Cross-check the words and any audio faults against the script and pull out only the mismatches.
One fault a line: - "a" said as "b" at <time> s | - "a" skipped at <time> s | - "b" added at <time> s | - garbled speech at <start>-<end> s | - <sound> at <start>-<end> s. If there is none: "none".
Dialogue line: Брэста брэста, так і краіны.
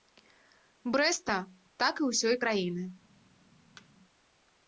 - "брэста" skipped at 1.4 s
- "ўсёй" added at 2.1 s
- thud at 3.8-3.9 s